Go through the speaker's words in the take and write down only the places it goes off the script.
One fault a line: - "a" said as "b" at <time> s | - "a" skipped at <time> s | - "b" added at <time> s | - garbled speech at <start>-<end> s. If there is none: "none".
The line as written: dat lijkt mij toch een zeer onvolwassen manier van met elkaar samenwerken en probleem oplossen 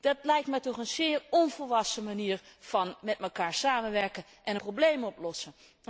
none